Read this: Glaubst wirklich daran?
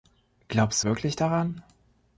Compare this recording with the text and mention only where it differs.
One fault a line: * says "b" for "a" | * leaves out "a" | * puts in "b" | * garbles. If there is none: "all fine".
all fine